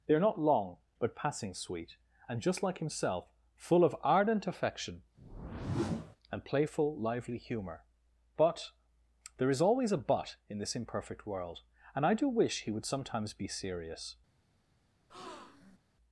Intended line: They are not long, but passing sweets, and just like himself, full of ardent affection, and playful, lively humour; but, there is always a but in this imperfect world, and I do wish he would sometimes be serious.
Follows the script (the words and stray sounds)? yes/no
no